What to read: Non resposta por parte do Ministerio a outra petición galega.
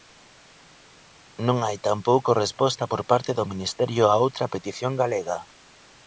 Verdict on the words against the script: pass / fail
fail